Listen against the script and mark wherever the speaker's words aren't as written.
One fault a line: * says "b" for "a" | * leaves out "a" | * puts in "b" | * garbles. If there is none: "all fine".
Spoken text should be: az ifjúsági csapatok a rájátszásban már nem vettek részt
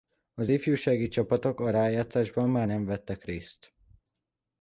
all fine